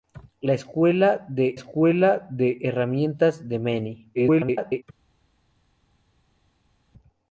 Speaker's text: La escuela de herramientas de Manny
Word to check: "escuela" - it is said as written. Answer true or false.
true